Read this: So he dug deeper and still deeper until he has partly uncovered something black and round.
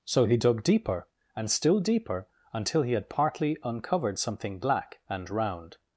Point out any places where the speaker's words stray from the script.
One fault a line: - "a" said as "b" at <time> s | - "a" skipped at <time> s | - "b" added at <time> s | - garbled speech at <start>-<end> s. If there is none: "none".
- "has" said as "had" at 2.9 s